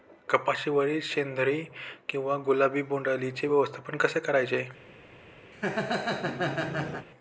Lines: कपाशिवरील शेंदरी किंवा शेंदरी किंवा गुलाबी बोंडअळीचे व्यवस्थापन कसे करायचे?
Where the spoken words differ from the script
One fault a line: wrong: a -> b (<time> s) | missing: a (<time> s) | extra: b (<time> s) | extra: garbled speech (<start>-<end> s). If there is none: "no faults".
missing: शेंदरी किंवा (2.4 s)